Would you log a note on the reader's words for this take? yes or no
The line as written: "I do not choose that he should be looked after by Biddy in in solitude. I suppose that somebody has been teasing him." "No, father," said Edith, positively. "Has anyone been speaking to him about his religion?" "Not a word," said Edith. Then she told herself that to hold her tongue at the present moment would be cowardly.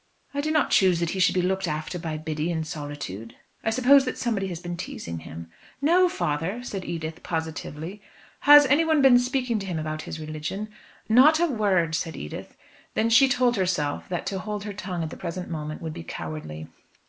yes